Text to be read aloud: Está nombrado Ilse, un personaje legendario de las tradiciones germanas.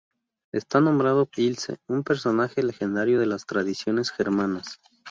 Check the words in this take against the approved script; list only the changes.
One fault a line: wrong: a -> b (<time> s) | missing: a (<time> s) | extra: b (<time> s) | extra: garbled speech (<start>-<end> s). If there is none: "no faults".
no faults